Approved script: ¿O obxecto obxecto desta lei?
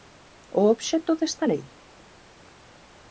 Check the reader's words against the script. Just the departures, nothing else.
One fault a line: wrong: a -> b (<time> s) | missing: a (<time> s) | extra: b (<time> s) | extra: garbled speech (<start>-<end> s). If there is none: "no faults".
missing: obxecto (1.1 s)